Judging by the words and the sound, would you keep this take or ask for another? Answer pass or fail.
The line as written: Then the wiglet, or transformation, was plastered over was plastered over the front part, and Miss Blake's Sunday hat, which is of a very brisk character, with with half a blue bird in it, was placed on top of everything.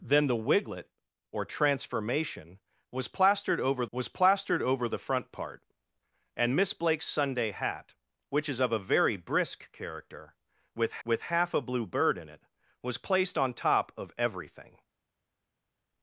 pass